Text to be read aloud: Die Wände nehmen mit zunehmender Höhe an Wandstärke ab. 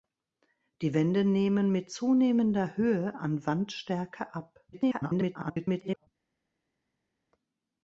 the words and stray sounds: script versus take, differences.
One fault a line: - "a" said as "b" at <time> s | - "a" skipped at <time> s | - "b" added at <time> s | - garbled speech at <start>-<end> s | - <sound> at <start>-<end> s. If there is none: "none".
- garbled speech at 4.7-6.1 s